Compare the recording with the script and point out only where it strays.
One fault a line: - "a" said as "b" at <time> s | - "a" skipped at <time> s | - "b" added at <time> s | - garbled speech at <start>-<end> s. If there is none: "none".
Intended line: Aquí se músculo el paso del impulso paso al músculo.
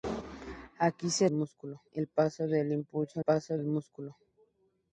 none